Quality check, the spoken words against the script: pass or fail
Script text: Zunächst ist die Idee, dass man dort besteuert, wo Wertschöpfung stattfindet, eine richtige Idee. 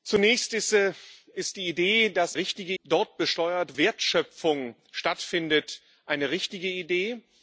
fail